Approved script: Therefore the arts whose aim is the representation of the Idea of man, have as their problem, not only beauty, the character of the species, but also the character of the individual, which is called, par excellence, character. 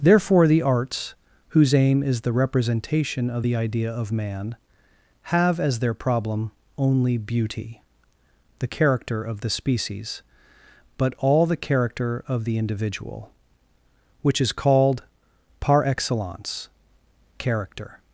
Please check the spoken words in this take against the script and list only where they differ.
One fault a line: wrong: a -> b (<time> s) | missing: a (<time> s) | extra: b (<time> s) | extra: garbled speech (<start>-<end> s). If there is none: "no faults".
missing: not (6.5 s)
wrong: also -> all (11.2 s)